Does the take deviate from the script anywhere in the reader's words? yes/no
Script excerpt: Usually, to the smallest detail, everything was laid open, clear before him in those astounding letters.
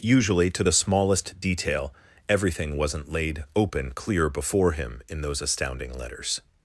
yes